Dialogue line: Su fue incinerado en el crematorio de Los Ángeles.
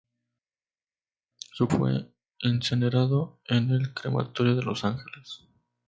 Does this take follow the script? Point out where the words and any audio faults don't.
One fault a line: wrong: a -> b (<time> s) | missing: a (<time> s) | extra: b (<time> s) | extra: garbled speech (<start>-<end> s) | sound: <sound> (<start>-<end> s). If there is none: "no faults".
no faults